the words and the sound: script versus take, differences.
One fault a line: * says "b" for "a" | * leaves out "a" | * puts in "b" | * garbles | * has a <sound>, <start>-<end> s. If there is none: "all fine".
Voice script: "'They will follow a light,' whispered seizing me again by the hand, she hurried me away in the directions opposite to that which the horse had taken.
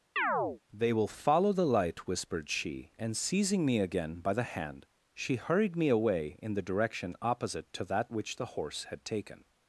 * has a chirp, 0.2-0.6 s
* says "the" for "a"
* puts in "she and"
* says "direction" for "directions"